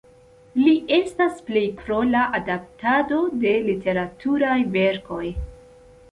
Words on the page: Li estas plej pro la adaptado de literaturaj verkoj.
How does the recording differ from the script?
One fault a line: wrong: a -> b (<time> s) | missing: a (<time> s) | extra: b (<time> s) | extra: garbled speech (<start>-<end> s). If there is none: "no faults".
no faults